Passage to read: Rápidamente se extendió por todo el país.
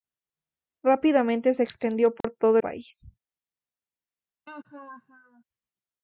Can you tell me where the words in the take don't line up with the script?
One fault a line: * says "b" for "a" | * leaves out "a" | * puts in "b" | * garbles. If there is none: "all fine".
* leaves out "el"